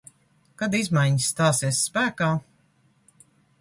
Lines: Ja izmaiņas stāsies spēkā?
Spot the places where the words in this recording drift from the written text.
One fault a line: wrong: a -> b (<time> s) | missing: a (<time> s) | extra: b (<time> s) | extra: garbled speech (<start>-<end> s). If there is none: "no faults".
wrong: Ja -> Kad (0.6 s)